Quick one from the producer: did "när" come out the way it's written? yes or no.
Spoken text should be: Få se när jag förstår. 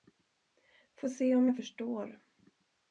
no